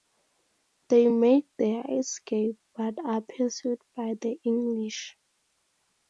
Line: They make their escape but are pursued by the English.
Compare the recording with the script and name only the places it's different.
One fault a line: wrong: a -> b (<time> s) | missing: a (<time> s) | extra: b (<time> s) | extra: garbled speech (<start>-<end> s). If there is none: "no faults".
no faults